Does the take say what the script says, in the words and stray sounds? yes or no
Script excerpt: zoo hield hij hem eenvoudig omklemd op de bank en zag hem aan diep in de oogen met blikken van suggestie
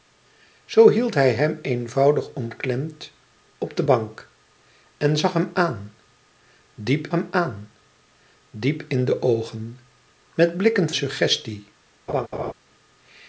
no